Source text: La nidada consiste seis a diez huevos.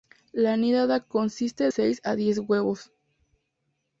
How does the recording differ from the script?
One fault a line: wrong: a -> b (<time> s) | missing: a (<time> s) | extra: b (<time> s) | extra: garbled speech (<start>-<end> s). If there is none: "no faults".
no faults